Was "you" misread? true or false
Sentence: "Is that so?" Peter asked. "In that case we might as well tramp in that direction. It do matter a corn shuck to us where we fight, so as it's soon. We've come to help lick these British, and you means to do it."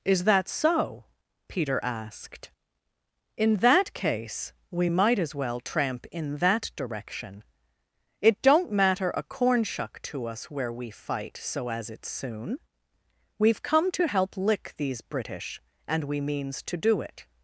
true